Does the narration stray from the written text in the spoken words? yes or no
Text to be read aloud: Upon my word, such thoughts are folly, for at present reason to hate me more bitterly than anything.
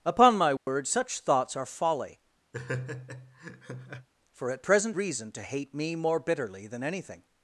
no